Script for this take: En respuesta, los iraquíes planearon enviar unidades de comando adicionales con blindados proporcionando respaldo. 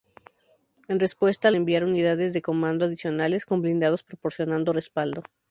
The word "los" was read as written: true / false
false